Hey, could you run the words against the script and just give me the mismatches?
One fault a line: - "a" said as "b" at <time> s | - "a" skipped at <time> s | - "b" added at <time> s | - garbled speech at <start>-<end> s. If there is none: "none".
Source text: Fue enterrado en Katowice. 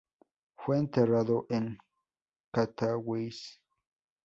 none